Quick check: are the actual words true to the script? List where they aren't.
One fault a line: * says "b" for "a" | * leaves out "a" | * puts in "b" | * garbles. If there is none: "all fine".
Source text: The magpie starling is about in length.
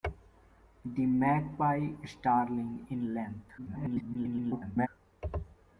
* leaves out "is about"
* garbles